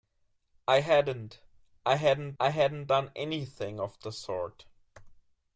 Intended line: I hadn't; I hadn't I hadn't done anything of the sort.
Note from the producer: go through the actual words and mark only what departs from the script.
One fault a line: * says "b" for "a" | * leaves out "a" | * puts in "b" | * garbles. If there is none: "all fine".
all fine